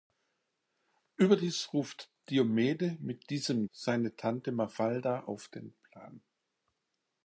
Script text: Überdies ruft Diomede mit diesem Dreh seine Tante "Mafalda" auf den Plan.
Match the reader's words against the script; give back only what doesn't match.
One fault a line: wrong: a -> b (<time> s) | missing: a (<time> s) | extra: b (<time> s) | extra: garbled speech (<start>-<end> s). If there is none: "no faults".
missing: Dreh (3.7 s)